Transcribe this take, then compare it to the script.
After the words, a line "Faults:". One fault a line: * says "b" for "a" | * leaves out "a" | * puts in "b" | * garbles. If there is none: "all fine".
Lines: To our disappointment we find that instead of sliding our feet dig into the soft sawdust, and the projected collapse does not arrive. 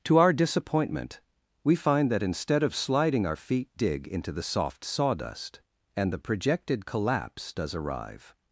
To our disappointment we find that instead of sliding our feet dig into the soft sawdust, and the projected collapse does arrive.
Faults:
* leaves out "not"